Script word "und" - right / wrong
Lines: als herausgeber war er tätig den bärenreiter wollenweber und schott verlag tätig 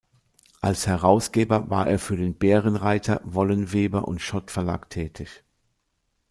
right